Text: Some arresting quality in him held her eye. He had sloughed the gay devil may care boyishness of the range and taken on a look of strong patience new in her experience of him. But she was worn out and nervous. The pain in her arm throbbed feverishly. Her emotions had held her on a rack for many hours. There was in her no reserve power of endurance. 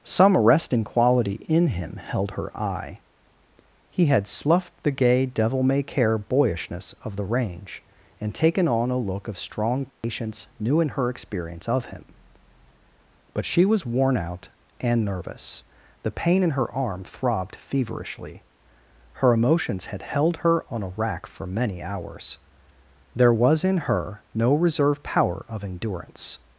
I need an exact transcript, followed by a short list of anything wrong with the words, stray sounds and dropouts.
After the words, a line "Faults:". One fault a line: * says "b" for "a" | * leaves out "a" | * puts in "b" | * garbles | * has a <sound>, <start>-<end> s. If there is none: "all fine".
Some arresting quality in him held her eye. He had sloughed the gay devil may care boyishness of the range and taken on a look of strong patience new in her experience of him. But she was worn out and nervous. The pain in her arm throbbed feverishly. Her emotions had held her on a rack for many hours. There was in her no reserve power of endurance.
Faults:
* has a dropout, 9.9-10.0 s